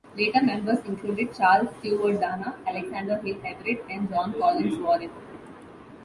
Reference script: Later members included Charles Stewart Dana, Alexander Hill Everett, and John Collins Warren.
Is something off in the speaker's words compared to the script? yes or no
no